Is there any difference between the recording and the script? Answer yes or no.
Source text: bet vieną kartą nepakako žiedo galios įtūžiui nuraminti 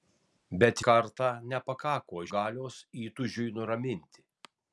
yes